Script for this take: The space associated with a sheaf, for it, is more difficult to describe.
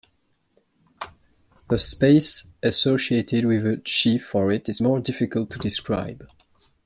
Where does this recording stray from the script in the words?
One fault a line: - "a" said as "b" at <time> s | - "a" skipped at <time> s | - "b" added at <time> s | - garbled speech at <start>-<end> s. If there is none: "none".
none